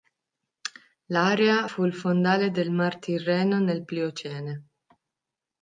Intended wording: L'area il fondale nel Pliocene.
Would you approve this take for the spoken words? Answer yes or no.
no